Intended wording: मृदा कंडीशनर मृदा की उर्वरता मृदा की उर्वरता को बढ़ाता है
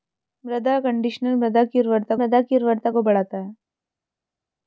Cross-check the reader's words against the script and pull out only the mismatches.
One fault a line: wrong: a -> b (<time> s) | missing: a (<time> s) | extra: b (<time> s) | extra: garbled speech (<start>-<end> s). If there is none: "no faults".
no faults